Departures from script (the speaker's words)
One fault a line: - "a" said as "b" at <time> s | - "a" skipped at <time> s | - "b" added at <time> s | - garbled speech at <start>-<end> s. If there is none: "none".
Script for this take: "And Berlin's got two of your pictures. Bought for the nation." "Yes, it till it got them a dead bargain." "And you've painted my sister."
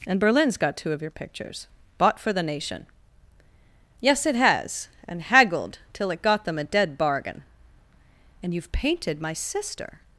- "has And haggled" added at 4.3 s